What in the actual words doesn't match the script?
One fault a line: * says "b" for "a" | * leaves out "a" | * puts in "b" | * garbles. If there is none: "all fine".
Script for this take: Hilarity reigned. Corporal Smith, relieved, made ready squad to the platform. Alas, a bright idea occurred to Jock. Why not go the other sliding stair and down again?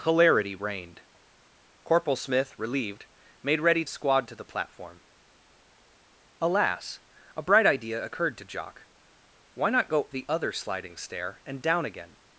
all fine